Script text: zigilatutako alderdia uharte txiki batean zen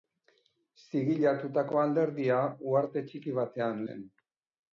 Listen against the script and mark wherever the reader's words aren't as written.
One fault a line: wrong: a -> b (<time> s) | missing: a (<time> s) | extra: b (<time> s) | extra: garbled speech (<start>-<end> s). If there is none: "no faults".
no faults